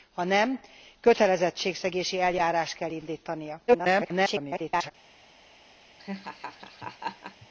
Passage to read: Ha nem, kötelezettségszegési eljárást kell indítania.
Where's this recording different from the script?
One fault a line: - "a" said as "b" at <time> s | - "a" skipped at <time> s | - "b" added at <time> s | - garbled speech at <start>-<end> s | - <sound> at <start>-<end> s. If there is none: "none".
- garbled speech at 3.7-4.9 s
- laugh at 6.0-7.5 s